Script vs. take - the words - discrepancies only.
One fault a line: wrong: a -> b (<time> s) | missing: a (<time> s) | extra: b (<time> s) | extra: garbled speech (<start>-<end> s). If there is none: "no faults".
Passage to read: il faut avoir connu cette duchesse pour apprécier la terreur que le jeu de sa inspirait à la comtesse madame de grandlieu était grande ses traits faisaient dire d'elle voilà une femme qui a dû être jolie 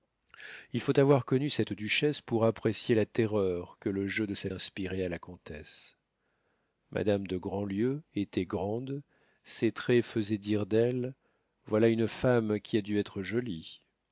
no faults